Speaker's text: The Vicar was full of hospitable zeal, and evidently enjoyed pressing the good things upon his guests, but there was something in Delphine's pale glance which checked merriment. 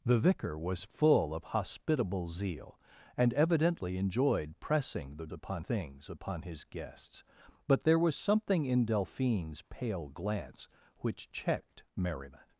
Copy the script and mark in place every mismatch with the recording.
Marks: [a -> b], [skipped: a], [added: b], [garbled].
The Vicar was full of hospitable zeal, and evidently enjoyed pressing the [good -> upon] things upon his guests, but there was something in Delphine's pale glance which checked merriment.